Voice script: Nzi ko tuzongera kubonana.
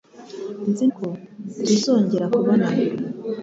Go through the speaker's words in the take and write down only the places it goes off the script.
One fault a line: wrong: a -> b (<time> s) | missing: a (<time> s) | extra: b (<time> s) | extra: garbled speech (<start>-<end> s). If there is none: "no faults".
no faults